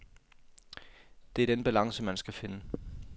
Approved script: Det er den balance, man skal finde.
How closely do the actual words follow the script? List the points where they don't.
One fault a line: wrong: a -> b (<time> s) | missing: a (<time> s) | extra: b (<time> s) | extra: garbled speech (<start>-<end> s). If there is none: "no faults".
no faults